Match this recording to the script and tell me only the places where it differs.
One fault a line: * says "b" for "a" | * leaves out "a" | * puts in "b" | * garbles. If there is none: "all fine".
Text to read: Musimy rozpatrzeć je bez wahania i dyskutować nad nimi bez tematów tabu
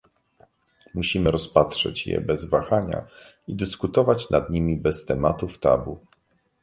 all fine